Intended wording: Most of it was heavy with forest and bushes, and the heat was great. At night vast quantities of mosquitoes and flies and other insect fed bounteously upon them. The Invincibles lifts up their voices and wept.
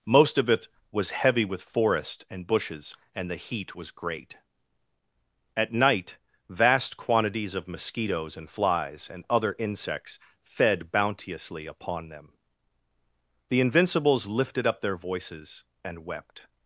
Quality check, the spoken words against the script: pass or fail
fail